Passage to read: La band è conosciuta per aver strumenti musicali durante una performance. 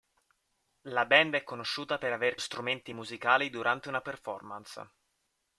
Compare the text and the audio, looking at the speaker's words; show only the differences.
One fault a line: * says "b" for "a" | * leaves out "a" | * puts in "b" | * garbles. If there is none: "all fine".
all fine